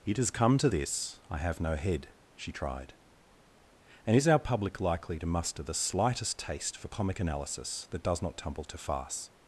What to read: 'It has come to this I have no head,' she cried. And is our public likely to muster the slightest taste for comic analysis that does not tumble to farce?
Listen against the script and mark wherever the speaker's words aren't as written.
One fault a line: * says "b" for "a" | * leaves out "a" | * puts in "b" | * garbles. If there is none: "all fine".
* says "tried" for "cried"